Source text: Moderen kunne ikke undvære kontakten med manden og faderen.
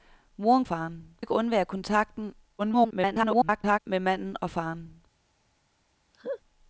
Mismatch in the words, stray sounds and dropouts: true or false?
true